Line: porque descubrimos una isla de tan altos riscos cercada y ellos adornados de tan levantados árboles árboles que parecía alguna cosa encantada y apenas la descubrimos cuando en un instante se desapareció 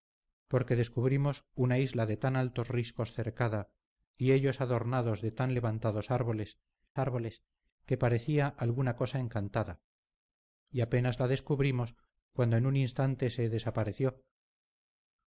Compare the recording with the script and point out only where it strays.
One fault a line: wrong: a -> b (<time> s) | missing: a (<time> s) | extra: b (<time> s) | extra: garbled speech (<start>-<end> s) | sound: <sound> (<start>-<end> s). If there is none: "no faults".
no faults